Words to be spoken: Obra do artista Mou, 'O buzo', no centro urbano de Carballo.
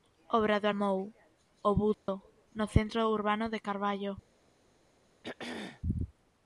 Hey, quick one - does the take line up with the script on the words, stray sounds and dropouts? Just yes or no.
no